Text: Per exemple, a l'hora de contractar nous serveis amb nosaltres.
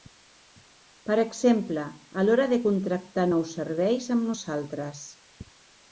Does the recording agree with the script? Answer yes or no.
yes